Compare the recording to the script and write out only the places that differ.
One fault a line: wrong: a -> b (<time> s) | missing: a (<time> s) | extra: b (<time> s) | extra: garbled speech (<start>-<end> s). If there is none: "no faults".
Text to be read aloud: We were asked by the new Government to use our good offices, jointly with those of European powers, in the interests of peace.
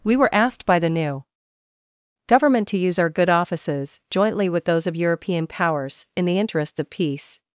no faults